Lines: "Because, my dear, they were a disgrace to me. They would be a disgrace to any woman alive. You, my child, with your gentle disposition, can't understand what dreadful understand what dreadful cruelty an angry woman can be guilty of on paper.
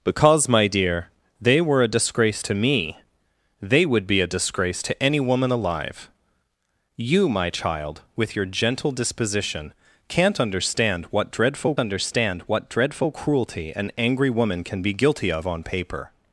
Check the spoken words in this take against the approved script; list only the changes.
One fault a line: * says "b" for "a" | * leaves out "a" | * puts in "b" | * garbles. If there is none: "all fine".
all fine